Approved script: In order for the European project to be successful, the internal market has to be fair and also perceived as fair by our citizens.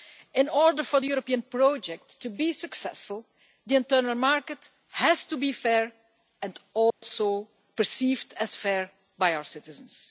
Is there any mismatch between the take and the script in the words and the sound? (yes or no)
yes